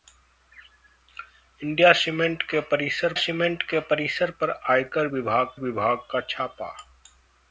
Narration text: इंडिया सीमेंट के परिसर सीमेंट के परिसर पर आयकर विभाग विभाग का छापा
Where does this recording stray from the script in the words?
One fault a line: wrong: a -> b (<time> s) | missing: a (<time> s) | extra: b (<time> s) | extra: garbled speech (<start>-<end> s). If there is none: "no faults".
no faults